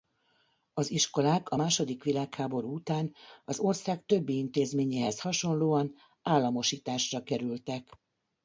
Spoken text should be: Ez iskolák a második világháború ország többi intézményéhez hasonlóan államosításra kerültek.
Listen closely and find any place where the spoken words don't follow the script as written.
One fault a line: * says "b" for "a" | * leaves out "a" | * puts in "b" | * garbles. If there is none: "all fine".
* says "Az" for "Ez"
* puts in "után az"